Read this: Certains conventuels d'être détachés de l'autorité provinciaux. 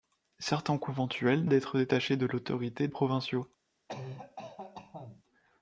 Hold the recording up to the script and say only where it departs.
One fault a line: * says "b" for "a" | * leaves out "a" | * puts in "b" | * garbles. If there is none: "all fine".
all fine